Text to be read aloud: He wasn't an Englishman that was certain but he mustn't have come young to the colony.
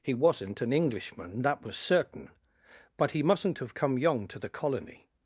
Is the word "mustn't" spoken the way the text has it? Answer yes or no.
yes